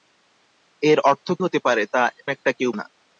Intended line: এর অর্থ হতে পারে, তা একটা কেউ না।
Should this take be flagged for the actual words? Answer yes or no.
no